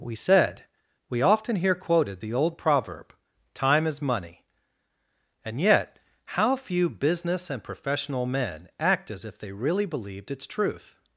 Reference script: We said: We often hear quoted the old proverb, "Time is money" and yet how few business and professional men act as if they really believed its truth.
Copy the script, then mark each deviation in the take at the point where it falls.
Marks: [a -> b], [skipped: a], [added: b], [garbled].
We said: We often hear quoted the old proverb, "Time is money" and yet how few business and professional men act as if they really believed its truth.